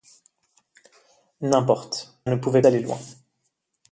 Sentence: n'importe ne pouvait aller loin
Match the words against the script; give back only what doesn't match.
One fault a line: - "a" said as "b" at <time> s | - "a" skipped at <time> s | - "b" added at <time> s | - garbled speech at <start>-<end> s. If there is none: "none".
none